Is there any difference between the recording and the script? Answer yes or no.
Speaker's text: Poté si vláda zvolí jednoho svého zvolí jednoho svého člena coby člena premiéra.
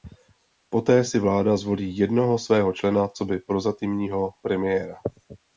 yes